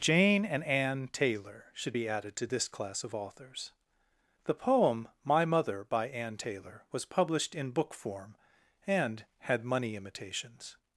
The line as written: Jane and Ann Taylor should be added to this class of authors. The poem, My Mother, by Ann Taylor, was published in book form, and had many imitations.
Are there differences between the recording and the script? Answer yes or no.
yes